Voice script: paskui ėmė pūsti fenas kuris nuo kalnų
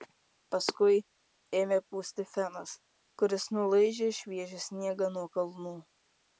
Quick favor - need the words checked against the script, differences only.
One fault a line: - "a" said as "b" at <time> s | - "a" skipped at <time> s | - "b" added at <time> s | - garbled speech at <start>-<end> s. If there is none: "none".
- "nulaižė šviežią sniegą" added at 3.6 s